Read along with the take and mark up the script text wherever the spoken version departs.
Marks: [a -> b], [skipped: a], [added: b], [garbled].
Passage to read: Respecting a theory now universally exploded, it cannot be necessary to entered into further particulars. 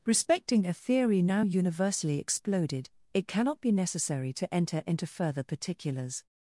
Respecting a theory now universally exploded, it cannot be necessary to [entered -> enter] into further particulars.